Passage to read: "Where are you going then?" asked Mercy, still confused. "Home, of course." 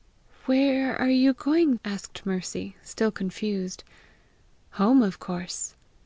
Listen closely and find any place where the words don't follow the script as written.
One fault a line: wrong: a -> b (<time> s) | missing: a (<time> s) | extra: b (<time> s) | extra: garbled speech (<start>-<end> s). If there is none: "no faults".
missing: then (1.8 s)